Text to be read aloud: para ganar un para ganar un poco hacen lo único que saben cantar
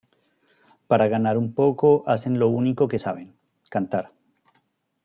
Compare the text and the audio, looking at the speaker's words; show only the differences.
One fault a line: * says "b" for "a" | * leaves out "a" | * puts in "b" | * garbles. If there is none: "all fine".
* leaves out "para ganar un"